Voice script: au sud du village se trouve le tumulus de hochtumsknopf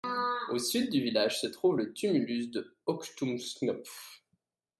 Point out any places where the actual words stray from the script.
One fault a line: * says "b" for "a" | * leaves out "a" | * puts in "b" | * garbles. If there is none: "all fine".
all fine